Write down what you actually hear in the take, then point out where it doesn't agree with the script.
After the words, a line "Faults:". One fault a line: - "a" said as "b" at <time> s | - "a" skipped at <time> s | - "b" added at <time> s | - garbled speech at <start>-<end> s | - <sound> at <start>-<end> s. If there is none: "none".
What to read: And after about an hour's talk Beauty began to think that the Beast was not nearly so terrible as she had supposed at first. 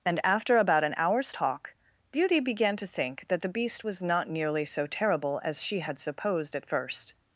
And after about an hour's talk Beauty began to think that the Beast was not nearly so terrible as she had supposed at first.
Faults:
none